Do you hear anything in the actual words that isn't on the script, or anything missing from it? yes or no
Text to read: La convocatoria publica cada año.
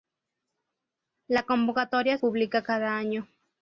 no